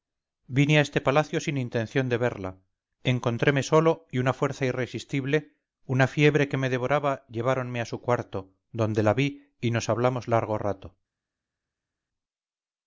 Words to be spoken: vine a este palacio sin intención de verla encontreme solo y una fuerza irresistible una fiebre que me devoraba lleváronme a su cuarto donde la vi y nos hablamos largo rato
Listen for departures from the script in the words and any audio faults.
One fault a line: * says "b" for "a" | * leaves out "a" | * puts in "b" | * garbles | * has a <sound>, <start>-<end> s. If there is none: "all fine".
all fine